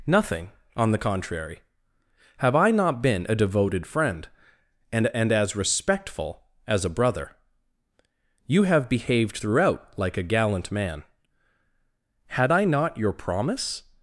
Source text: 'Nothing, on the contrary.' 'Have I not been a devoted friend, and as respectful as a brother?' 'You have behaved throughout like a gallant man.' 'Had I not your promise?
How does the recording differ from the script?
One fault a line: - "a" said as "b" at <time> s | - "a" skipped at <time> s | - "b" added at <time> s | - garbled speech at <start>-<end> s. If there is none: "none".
- "and" added at 5.1 s